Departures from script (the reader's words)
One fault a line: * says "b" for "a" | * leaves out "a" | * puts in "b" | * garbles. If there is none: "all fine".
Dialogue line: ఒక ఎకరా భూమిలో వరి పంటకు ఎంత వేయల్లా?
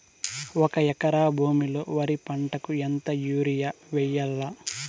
* puts in "యూరియ"